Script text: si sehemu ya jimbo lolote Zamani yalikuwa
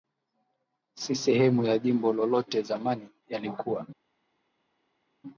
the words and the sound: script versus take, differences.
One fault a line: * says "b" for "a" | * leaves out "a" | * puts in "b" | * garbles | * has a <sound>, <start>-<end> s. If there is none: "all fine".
all fine